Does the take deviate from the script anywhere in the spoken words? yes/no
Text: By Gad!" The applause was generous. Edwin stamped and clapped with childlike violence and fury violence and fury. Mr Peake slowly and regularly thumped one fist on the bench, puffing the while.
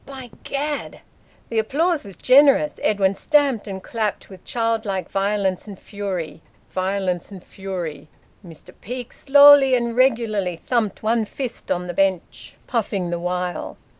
no